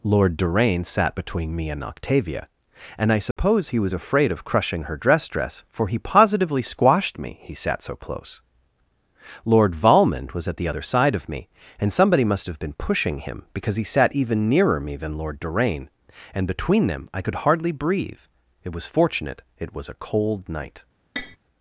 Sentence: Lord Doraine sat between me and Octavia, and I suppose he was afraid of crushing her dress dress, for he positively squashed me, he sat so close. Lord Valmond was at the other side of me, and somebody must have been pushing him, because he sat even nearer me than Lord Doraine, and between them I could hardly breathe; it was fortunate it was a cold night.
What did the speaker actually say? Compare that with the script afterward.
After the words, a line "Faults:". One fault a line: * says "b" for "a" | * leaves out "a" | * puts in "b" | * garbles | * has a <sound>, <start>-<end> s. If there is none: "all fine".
Lord Doraine sat between me and Octavia, and I suppose he was afraid of crushing her dress dress, for he positively squashed me, he sat so close. Lord Valmond was at the other side of me, and somebody must have been pushing him, because he sat even nearer me than Lord Doraine, and between them I could hardly breathe; it was fortunate it was a cold night.
Faults:
* has a dropout, 3.3-3.4 s
* has a tap, 21.2-21.4 s